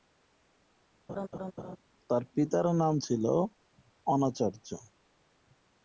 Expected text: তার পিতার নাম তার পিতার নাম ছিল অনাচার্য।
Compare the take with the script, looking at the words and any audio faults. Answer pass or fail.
fail